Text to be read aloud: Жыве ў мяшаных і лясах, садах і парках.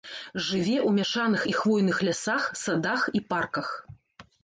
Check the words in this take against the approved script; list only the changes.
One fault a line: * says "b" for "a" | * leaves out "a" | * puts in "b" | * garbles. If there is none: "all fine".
* puts in "хвойных"